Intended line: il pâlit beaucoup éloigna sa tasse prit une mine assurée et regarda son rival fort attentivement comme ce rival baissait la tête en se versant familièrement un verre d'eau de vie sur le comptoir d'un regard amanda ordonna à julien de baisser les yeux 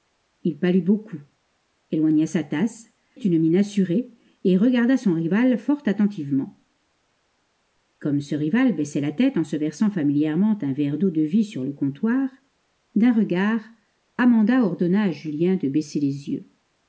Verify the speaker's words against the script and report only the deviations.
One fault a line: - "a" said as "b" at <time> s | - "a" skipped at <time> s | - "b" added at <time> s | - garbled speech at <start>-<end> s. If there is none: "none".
- "prit" skipped at 2.9 s